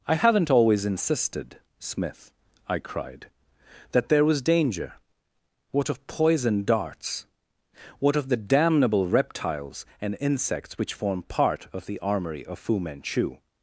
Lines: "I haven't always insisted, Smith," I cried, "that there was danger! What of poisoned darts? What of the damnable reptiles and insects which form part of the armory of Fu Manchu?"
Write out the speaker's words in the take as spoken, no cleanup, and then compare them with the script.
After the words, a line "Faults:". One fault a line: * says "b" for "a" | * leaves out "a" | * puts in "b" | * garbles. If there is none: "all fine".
"I haven't always insisted, Smith," I cried, "that there was danger! What of poisoned darts? What of the damnable reptiles and insects which form part of the armory of Fu Manchu?"
Faults:
all fine